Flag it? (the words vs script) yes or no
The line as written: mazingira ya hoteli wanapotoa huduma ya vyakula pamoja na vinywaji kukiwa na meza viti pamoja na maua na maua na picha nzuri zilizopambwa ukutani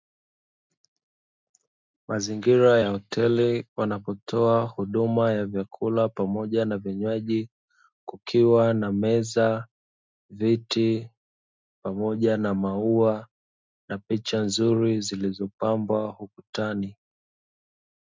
yes